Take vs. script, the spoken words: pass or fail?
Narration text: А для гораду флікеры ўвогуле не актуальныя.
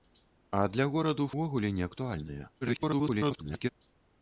fail